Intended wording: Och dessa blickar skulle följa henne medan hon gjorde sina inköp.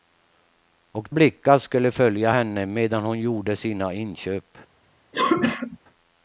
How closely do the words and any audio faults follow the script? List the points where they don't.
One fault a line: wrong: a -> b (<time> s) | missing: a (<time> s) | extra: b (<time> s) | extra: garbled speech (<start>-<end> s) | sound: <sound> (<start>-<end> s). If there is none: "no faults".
missing: dessa (1.1 s)
sound: cough (5.1-5.8 s)